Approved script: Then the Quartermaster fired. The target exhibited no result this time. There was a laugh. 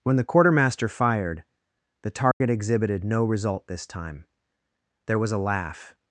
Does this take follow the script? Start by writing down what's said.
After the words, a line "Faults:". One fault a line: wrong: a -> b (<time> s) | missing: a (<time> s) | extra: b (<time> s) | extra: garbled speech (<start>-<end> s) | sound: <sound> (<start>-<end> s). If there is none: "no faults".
When the Quartermaster fired. The target exhibited no result this time. There was a laugh.
Faults:
wrong: Then -> When (0.0 s)
sound: dropout (2.3-2.4 s)